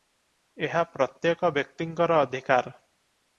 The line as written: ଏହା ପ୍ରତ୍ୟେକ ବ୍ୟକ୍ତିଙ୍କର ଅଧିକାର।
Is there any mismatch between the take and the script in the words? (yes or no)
no